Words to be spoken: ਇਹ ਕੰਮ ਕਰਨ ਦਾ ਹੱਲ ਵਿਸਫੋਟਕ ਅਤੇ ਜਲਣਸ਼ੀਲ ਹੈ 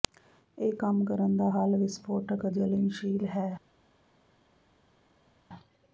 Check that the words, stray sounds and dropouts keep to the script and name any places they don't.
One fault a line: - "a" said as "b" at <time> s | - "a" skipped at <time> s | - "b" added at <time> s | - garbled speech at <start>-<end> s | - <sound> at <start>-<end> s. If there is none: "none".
- "ਅਤੇ" skipped at 2.5 s